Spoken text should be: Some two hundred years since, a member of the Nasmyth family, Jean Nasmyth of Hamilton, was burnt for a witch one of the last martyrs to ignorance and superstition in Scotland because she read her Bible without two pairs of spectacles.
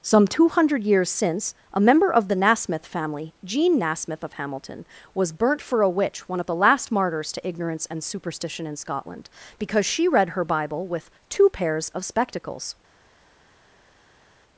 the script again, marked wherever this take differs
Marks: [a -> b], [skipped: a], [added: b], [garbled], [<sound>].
Some two hundred years since, a member of the Nasmyth family, Jean Nasmyth of Hamilton, was burnt for a witch one of the last martyrs to ignorance and superstition in Scotland because she read her Bible [without -> with] two pairs of spectacles.